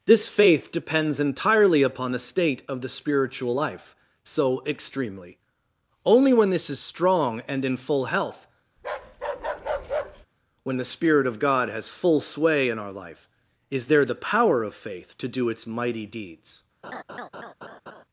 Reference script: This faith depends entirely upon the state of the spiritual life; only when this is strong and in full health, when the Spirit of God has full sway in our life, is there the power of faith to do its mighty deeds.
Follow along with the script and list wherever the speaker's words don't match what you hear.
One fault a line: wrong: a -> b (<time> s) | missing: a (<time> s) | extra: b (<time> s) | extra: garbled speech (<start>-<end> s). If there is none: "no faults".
extra: so extremely (4.2 s)